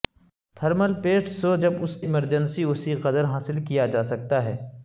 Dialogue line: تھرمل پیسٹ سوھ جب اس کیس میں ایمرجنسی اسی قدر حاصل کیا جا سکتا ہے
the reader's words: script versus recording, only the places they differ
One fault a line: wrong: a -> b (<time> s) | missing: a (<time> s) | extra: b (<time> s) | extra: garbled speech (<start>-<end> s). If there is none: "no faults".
missing: کیس میں (1.9 s)